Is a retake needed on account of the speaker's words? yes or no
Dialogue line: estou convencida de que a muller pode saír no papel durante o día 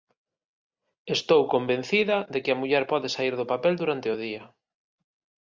yes